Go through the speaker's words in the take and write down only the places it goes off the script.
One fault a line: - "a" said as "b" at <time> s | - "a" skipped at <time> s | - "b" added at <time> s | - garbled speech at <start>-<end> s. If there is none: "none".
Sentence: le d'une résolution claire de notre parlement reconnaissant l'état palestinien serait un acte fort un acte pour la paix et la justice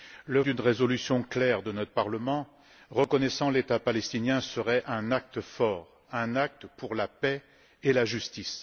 none